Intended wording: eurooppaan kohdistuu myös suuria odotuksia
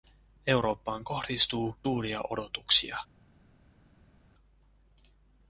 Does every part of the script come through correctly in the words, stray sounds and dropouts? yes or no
no